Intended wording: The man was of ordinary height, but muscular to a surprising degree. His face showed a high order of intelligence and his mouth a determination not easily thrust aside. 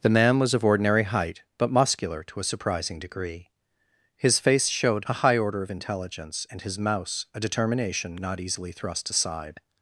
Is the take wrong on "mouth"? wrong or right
wrong